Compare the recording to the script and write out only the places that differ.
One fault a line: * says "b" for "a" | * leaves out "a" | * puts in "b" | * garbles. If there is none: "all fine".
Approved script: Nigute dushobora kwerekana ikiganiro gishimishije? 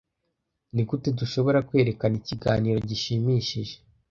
all fine